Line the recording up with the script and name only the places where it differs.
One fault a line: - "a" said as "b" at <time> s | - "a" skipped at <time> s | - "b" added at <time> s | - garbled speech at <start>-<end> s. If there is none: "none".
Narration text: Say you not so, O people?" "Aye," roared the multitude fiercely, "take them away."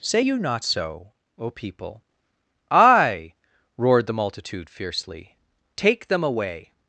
none